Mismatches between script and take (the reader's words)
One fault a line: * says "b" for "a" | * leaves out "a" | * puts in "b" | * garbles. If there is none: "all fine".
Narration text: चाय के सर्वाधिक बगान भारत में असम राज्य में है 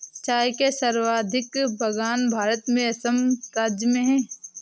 all fine